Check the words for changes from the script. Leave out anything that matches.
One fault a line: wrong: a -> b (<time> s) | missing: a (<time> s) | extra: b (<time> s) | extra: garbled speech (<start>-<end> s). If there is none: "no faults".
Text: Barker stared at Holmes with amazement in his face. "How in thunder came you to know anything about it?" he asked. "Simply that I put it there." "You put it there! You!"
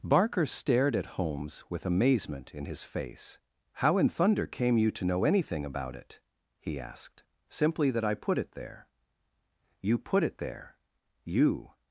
no faults